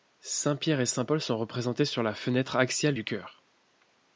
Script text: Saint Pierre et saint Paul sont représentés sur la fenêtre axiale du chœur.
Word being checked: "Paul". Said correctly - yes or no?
yes